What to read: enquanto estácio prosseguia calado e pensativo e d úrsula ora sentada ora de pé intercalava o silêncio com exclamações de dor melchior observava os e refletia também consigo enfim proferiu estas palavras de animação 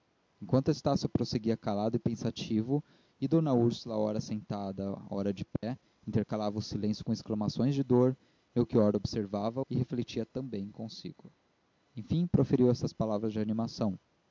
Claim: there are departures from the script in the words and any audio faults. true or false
true